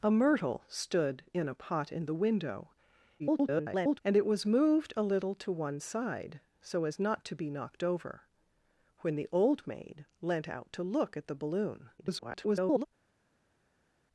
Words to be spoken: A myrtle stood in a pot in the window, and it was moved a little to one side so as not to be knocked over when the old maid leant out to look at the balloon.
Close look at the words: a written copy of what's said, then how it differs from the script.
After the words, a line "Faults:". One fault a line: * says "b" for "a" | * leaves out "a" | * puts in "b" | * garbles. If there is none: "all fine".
A myrtle stood in a pot in the window, [garbled] and it was moved a little to one side so as not to be knocked over when the old maid leant out to look at the balloon. [garbled]
Faults:
* garbles
* garbles